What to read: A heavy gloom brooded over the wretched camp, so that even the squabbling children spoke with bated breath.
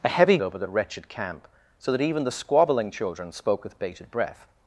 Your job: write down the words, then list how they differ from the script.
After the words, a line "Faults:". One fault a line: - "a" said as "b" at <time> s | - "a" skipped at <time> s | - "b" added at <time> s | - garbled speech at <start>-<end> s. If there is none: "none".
A heavy over the wretched camp, so that even the squabbling children spoke with bated breath.
Faults:
- "gloom brooded" skipped at 0.4 s